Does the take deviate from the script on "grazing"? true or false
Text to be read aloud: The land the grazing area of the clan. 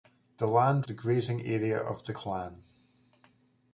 false